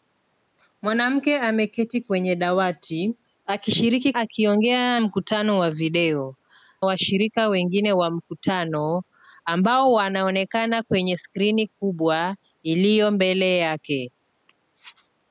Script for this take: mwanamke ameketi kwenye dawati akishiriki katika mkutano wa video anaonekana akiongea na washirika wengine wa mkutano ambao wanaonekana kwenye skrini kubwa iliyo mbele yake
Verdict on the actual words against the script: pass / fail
fail